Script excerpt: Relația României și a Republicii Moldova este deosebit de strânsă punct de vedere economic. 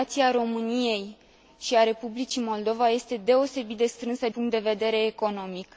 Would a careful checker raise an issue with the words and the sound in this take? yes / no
no